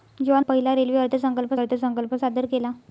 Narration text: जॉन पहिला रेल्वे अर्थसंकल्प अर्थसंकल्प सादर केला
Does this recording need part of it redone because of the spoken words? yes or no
no